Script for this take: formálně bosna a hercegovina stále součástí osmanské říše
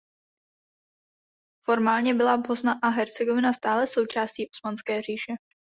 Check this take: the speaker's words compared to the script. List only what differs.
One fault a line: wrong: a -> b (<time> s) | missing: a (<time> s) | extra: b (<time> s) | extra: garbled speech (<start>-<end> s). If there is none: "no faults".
extra: byla (2.1 s)